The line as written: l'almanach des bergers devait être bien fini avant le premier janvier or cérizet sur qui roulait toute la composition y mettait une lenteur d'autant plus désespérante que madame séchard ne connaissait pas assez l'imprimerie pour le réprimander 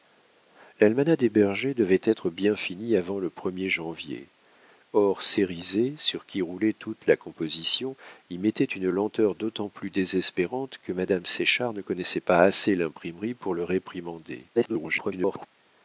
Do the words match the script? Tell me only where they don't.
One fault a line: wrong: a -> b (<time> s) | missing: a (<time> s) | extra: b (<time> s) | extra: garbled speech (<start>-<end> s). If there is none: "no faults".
extra: garbled speech (14.5-15.5 s)